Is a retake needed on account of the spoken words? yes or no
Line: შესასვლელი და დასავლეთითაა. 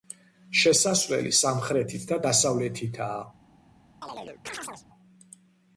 yes